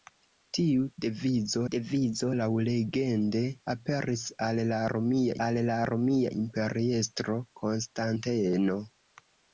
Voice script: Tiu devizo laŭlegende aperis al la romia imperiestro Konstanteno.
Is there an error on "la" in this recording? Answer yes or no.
no